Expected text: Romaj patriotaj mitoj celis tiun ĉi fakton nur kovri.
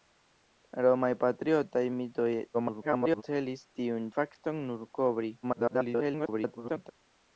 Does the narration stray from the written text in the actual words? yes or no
yes